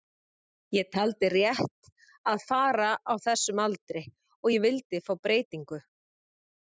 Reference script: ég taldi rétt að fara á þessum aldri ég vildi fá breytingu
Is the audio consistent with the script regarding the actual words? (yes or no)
no